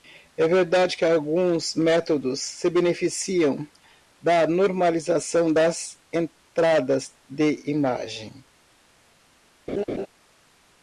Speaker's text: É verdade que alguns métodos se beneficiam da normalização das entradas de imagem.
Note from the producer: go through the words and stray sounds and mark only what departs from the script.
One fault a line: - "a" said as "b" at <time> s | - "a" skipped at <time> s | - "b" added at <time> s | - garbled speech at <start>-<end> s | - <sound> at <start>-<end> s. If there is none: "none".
- laugh at 9.7-10.1 s